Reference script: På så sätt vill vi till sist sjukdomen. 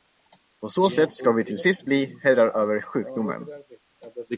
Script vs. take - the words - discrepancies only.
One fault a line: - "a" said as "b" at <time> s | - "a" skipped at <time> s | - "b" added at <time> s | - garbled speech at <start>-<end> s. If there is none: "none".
- "vill" said as "ska" at 1.1 s
- "bli herrar över" added at 1.8 s